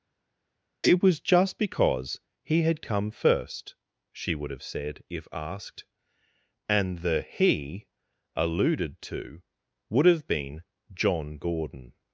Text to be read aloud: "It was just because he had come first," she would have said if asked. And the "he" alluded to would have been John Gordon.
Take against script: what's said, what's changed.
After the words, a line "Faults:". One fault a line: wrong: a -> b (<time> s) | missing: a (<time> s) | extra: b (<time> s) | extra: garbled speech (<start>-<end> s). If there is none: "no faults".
"It was just because he had come first," she would have said if asked. And the "he" alluded to would have been John Gordon.
Faults:
no faults